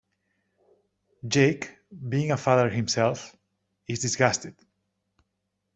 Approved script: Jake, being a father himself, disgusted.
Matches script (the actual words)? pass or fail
fail